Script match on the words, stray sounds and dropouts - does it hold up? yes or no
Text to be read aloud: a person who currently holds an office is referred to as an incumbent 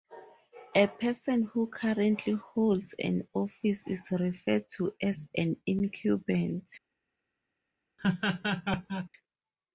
no